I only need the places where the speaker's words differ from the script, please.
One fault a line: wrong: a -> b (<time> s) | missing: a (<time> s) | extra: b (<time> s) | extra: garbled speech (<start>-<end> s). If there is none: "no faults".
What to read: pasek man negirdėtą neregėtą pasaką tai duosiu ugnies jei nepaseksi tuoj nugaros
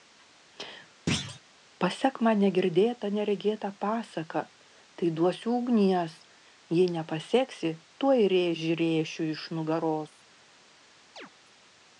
extra: rėžį rėšiu iš (8.4 s)